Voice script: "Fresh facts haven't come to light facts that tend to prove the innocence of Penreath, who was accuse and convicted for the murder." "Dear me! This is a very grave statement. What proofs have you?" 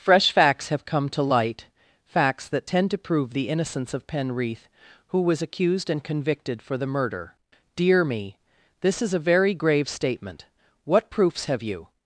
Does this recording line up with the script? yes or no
no